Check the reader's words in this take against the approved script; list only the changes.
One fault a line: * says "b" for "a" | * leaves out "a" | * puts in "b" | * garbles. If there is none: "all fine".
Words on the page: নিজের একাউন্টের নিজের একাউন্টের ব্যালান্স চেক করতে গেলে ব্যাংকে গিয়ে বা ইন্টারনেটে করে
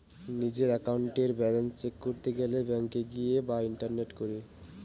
* leaves out "নিজের একাউন্টের"